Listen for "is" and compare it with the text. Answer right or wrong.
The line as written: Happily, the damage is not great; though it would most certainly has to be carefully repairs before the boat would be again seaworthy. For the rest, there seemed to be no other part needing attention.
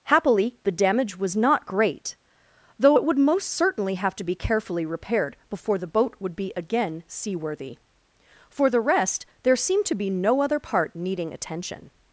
wrong